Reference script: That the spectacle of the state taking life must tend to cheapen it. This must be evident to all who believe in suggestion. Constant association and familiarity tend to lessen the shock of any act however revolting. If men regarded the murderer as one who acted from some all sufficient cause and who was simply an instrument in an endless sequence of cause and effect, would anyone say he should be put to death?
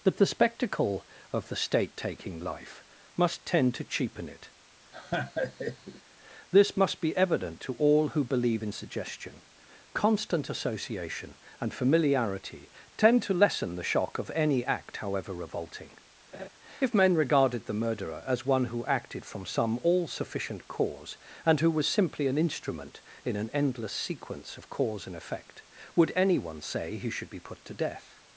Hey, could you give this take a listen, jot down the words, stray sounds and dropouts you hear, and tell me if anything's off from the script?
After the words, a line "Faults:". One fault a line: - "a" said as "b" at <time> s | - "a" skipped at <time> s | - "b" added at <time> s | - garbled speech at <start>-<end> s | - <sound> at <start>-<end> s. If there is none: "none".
That the spectacle of the state taking life must tend to cheapen it. This must be evident to all who believe in suggestion. Constant association and familiarity tend to lessen the shock of any act however revolting. If men regarded the murderer as one who acted from some all sufficient cause and who was simply an instrument in an endless sequence of cause and effect, would anyone say he should be put to death?
Faults:
- laugh at 4.9-6.0 s
- laugh at 16.3-16.5 s